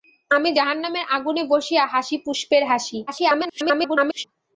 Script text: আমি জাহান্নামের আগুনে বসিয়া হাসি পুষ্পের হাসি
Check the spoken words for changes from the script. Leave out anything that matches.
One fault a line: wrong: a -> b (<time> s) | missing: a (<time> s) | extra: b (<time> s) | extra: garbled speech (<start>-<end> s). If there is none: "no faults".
extra: garbled speech (3.1-4.2 s)